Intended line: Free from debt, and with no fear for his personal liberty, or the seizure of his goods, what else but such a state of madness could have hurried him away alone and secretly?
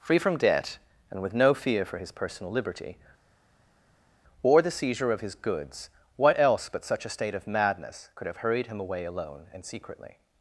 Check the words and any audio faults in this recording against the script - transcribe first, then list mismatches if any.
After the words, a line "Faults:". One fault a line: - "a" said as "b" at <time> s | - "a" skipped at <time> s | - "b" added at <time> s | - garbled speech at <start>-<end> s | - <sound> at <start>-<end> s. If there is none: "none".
Free from debt, and with no fear for his personal liberty, or the seizure of his goods, what else but such a state of madness could have hurried him away alone and secretly?
Faults:
none